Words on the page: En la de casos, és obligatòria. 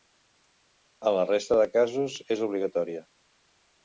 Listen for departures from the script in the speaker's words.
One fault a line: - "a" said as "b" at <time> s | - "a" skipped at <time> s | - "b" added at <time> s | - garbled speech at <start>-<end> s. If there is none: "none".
- "resta" added at 1.3 s